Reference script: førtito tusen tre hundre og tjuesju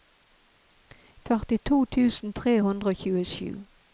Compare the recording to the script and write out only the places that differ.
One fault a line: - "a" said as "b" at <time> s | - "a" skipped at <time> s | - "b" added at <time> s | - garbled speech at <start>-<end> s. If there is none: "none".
none